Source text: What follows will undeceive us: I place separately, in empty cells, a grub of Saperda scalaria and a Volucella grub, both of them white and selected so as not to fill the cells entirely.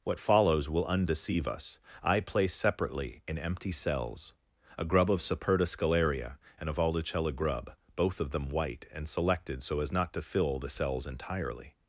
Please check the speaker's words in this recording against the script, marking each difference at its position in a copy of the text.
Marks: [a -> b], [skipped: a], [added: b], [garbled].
What follows will undeceive us: I place separately, in empty cells, a grub of Saperda scalaria and a Volucella grub, both of them white and selected so as not to fill the cells entirely.